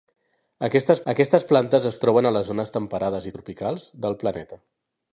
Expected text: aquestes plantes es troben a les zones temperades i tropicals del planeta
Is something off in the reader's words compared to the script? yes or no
yes